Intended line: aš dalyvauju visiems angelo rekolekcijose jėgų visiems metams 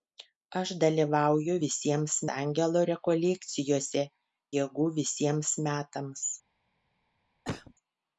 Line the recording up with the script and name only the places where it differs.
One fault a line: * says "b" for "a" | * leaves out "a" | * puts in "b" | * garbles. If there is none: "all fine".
all fine